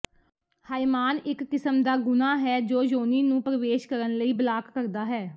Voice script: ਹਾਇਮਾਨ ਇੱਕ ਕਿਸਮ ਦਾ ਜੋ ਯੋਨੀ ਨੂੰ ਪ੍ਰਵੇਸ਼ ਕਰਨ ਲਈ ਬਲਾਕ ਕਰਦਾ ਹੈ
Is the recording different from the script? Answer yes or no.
yes